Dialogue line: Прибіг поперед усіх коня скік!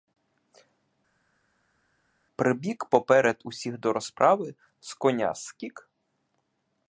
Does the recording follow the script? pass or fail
fail